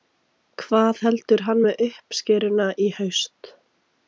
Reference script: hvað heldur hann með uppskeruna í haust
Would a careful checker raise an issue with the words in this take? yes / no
no